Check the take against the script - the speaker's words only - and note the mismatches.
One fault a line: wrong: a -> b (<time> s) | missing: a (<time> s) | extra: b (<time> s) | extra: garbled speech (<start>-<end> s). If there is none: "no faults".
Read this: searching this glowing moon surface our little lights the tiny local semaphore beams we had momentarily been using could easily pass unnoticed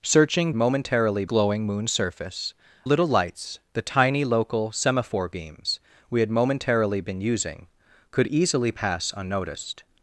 wrong: this -> momentarily (0.5 s)
missing: our (2.5 s)